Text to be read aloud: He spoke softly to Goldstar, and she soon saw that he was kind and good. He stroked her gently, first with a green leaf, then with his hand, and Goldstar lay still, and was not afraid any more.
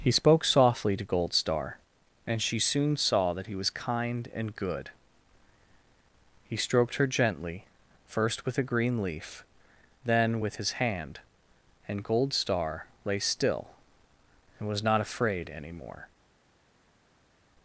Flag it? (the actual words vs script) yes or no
no